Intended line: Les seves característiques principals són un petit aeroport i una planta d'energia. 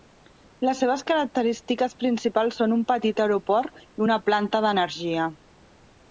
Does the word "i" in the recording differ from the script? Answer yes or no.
no